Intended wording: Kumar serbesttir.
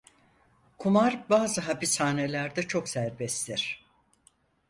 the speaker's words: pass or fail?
fail